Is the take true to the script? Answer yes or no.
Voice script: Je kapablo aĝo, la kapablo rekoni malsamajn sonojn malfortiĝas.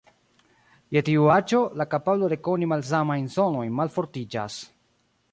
no